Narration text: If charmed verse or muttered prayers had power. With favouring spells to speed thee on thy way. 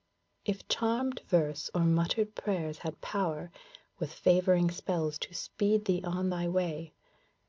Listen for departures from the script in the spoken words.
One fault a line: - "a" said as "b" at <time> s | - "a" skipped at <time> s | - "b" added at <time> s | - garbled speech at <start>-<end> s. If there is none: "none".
none